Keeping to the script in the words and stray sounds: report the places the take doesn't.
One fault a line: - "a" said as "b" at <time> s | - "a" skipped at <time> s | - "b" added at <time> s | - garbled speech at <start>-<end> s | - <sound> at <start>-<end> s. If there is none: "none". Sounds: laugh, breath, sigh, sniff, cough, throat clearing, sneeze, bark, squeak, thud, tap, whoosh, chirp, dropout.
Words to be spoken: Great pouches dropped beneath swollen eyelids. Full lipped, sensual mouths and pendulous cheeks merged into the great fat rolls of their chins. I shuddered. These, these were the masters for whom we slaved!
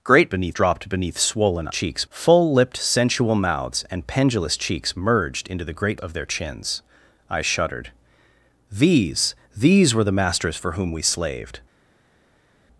- "pouches" said as "beneath" at 0.3 s
- "eyelids" said as "cheeks" at 1.7 s
- "fat rolls" skipped at 6.0 s